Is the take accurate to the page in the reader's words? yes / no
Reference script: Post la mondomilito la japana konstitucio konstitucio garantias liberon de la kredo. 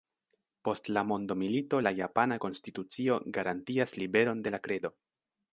no